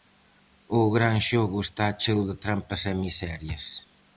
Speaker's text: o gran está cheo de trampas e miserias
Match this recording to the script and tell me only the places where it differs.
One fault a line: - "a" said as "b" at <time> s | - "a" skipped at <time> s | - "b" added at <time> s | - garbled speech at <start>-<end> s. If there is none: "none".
- "xogo" added at 1.3 s